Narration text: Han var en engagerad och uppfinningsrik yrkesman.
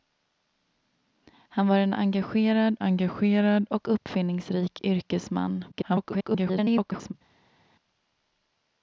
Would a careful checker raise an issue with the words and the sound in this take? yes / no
yes